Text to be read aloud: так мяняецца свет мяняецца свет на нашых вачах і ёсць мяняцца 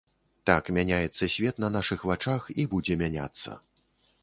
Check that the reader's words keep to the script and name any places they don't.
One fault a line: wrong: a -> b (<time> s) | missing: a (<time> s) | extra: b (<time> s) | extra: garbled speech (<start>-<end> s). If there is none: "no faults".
missing: мяняецца свет (1.6 s)
wrong: ёсць -> будзе (2.7 s)